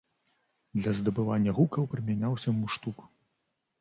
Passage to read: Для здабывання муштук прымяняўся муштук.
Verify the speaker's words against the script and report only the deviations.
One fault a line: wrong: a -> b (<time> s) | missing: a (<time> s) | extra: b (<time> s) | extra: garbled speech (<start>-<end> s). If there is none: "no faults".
wrong: муштук -> гукаў (1.6 s)